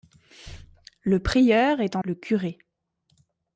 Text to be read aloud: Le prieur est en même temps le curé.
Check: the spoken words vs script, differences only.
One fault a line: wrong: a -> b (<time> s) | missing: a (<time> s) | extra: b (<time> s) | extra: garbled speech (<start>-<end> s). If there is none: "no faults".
missing: même temps (2.0 s)